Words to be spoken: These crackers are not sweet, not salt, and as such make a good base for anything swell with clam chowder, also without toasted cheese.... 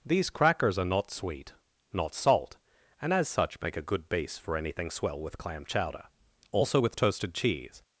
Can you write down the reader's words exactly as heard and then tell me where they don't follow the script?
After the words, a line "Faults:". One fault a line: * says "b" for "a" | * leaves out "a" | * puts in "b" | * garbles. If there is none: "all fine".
These crackers are not sweet, not salt, and as such make a good base for anything swell with clam chowder, also with toasted cheese....
Faults:
* says "with" for "without"